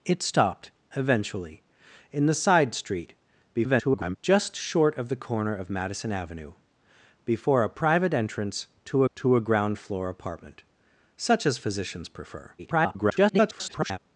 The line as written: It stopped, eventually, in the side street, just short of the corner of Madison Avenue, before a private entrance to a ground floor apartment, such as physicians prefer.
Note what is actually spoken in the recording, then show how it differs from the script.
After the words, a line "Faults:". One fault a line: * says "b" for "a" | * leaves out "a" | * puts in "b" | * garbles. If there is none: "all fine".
It stopped, eventually, in the side street, [garbled] just short of the corner of Madison Avenue, before a private entrance to to a ground floor apartment, such as physicians prefer. [garbled]
Faults:
* garbles
* puts in "to"
* garbles